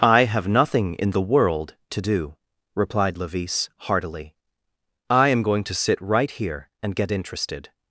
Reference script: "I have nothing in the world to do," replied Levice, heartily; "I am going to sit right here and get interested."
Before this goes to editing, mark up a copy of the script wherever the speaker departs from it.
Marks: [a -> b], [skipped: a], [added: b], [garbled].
"I have nothing in the world to do," replied Levice, heartily; "I am going to sit right here and get interested."